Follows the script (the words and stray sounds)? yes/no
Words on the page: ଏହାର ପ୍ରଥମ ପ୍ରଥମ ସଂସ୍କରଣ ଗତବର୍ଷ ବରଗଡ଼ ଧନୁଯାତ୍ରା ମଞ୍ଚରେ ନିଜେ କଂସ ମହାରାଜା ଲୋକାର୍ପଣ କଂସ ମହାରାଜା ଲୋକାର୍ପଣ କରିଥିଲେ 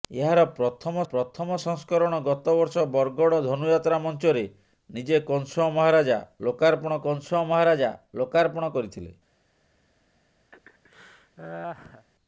no